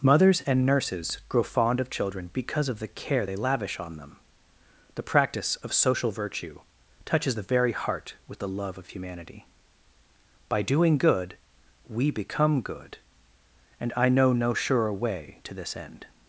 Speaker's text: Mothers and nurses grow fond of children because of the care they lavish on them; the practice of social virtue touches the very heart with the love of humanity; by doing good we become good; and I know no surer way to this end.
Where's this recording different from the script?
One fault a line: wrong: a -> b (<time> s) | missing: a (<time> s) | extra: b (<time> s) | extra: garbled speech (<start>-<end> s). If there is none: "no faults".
no faults